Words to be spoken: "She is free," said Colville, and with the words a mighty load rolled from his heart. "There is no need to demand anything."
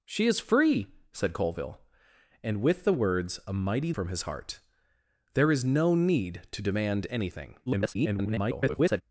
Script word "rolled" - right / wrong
wrong